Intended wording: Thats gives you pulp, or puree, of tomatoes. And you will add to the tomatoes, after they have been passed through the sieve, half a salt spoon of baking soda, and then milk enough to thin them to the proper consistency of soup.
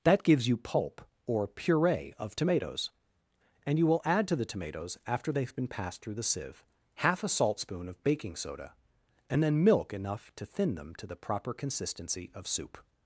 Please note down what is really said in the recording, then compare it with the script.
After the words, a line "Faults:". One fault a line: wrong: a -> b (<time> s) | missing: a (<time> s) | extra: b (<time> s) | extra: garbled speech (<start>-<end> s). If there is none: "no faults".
That gives you pulp, or puree, of tomatoes. And you will add to the tomatoes, after they have been passed through the sieve, half a salt spoon of baking soda, and then milk enough to thin them to the proper consistency of soup.
Faults:
wrong: Thats -> That (0.0 s)